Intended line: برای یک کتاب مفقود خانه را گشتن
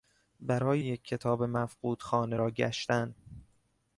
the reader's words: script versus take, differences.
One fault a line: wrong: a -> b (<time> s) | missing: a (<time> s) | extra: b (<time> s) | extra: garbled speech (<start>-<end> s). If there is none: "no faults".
no faults